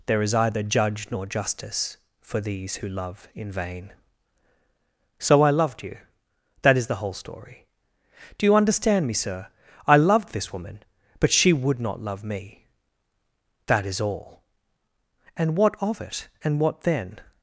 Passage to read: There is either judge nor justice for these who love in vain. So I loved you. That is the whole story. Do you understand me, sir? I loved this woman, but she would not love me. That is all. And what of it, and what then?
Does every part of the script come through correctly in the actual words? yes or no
yes